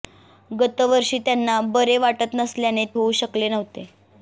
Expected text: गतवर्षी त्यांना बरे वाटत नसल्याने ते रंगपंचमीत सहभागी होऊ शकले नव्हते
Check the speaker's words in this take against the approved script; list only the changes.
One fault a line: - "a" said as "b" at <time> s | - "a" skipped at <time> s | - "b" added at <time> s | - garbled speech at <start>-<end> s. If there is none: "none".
- "ते रंगपंचमीत सहभागी" skipped at 2.9 s